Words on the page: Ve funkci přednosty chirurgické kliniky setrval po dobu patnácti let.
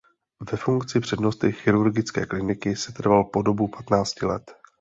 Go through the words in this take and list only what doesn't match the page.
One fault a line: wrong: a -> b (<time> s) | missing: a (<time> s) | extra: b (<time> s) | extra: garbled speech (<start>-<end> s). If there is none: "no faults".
no faults